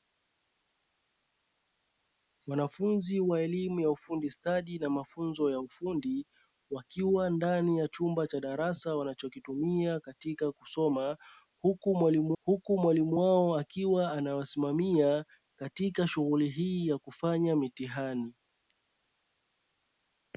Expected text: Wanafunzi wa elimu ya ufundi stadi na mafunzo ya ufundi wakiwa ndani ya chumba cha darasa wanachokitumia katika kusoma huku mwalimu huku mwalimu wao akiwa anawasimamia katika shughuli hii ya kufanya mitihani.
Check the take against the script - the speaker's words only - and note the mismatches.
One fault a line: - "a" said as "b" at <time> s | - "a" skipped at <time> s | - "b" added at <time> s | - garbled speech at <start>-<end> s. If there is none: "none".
none